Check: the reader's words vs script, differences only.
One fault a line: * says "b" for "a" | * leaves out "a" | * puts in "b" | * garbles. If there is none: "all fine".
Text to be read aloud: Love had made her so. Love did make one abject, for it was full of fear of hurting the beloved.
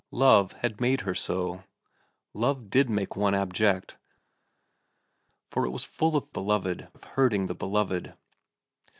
* says "beloved" for "fear"